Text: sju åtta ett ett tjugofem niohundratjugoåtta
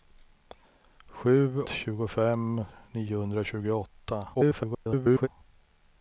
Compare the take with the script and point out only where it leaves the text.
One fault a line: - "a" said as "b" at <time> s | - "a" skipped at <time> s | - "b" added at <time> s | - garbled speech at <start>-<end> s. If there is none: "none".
- "åtta ett ett" skipped at 1.6 s
- garbled speech at 4.3-5.3 s